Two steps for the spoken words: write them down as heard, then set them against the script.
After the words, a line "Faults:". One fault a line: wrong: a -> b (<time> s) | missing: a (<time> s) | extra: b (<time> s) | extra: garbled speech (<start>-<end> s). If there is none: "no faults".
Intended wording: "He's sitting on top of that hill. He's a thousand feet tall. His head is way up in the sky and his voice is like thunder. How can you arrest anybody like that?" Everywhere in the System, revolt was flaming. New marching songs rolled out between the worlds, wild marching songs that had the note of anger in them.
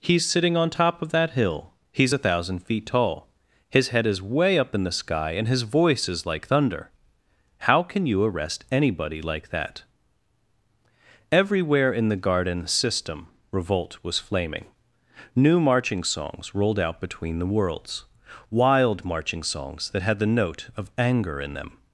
"He's sitting on top of that hill. He's a thousand feet tall. His head is way up in the sky and his voice is like thunder. How can you arrest anybody like that?" Everywhere in the garden System, revolt was flaming. New marching songs rolled out between the worlds, wild marching songs that had the note of anger in them.
Faults:
extra: garden (12.1 s)